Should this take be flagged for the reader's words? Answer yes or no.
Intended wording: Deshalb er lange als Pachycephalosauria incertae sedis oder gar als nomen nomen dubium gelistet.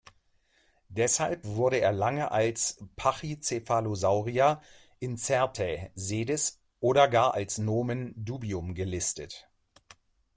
yes